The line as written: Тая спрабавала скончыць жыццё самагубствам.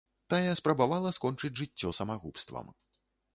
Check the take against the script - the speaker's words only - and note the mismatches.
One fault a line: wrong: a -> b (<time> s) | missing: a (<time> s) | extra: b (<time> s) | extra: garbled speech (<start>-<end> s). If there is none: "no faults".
no faults